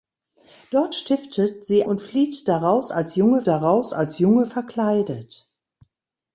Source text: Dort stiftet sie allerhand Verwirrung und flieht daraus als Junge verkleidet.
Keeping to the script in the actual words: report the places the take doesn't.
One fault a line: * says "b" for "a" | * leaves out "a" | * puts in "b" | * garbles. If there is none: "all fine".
* says "und flieht daraus als Junge" for "allerhand Verwirrung und flieht"